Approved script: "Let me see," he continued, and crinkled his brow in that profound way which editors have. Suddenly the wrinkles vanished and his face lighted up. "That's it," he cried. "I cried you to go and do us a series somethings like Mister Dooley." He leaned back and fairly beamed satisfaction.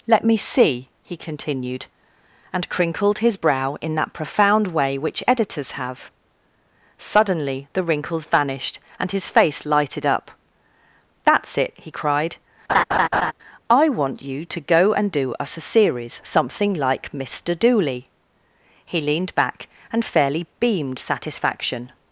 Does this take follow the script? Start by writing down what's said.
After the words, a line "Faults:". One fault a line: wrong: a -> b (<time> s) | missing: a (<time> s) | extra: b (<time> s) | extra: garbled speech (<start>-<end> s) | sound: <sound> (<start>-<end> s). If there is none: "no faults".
"Let me see," he continued, and crinkled his brow in that profound way which editors have. Suddenly the wrinkles vanished and his face lighted up. "That's it," he cried. "I want you to go and do us a series something like Mister Dooley." He leaned back and fairly beamed satisfaction.
Faults:
sound: laugh (12.7-13.3 s)
wrong: cried -> want (13.9 s)
wrong: somethings -> something (16.2 s)